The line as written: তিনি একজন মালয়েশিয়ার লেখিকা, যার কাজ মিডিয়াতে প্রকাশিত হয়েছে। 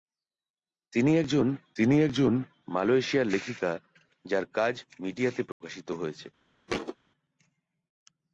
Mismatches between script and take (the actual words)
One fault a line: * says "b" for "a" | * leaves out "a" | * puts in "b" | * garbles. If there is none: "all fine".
* puts in "তিনি একজন"